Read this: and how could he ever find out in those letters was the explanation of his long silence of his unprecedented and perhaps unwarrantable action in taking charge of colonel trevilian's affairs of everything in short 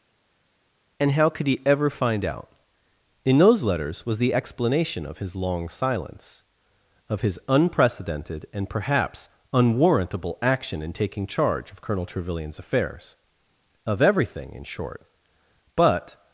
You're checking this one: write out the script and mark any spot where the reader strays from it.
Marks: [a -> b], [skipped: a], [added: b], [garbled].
and how could he ever find out in those letters was the explanation of his long silence of his unprecedented and perhaps unwarrantable action in taking charge of colonel trevilian's affairs of everything in short [added: but]